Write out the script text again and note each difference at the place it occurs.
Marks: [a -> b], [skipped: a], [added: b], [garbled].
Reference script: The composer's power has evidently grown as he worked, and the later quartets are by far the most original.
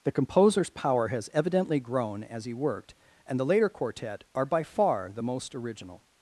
The composer's power has evidently grown as he worked, and the later [quartets -> quartet] are by far the most original.